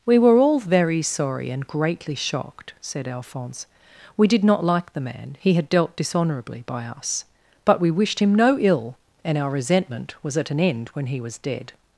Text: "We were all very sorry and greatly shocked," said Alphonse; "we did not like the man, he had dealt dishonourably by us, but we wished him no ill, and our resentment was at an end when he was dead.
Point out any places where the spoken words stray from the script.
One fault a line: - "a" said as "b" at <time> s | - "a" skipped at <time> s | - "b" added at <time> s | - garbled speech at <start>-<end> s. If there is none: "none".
none